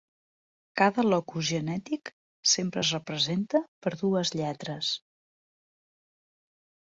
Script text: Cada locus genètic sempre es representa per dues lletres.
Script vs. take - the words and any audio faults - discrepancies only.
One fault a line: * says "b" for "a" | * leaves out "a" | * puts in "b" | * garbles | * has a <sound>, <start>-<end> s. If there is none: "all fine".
all fine